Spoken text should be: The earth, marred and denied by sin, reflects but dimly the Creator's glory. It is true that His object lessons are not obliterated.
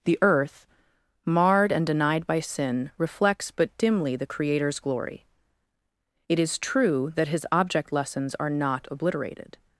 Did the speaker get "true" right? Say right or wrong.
right